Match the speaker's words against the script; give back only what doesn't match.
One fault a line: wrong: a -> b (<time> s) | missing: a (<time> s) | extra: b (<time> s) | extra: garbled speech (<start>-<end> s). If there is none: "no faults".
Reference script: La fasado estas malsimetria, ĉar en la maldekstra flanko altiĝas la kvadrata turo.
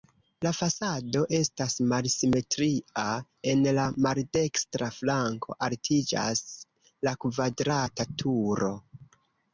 missing: ĉar (3.0 s)